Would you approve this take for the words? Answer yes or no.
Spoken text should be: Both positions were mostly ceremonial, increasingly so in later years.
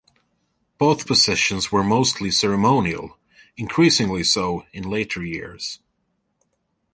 yes